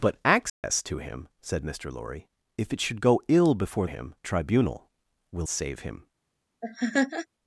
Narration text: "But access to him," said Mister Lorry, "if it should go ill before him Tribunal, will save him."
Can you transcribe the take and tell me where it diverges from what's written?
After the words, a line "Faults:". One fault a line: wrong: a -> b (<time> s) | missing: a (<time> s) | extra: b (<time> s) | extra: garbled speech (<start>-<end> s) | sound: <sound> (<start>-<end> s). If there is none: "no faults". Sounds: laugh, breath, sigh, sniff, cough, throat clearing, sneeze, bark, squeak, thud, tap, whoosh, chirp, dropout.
"But access to him," said Mister Lorry, "if it should go ill before him Tribunal, will save him."
Faults:
sound: dropout (0.5-0.6 s)
sound: laugh (6.6-7.3 s)